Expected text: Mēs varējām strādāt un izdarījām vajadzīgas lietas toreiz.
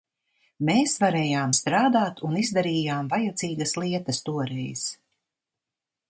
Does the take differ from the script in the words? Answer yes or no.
no